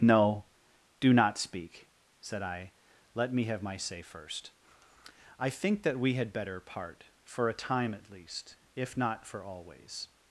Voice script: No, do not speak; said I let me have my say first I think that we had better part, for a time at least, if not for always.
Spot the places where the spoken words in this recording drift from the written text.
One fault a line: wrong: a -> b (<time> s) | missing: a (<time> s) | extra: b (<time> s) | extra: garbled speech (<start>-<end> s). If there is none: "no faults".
no faults